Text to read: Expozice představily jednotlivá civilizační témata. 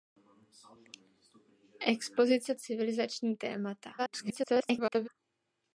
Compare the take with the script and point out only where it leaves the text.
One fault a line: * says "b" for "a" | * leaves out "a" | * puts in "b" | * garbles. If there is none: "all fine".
* leaves out "představily jednotlivá"
* garbles